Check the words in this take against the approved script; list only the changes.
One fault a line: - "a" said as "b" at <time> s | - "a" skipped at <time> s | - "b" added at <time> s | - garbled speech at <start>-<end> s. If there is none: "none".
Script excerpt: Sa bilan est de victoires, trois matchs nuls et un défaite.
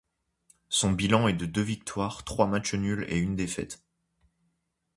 - "Sa" said as "Son" at 0.7 s
- "deux" added at 1.4 s
- "un" said as "une" at 3.2 s